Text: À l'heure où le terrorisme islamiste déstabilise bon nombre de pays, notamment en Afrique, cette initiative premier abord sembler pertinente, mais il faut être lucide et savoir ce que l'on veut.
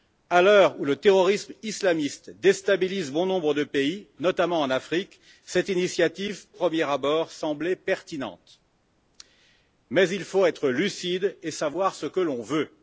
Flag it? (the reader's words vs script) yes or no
no